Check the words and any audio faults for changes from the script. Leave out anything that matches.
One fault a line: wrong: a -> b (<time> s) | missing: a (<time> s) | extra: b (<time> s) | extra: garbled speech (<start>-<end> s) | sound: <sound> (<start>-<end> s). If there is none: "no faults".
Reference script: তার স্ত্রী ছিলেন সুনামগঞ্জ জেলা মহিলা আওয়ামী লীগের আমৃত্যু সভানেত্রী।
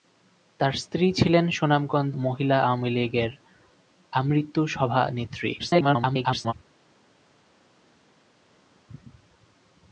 missing: জেলা (2.1 s)
extra: garbled speech (5.6-6.5 s)